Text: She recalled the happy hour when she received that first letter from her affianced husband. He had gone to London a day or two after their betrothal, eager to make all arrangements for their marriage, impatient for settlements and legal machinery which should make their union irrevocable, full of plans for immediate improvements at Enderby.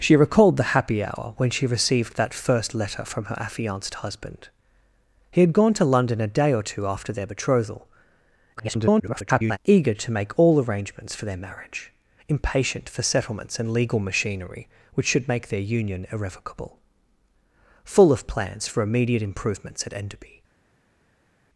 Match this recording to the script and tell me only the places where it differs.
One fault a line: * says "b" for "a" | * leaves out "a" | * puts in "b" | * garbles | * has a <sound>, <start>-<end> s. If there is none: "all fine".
* garbles